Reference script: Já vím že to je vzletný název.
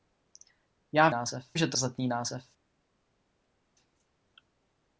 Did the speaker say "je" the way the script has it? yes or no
no